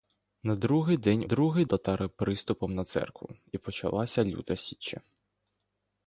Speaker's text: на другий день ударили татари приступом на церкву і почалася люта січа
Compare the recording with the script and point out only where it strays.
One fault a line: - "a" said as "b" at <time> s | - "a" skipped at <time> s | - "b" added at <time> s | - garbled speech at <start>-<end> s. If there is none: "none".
- "ударили" said as "другий" at 1.2 s